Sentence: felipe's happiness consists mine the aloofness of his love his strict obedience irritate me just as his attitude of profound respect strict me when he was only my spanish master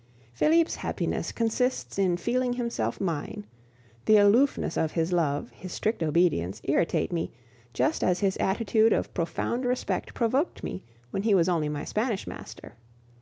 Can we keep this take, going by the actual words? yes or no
no